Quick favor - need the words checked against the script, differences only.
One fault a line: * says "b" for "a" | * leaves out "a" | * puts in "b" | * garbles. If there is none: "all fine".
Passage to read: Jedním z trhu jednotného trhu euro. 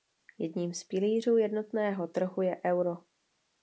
* says "pilířů" for "trhu"
* puts in "je"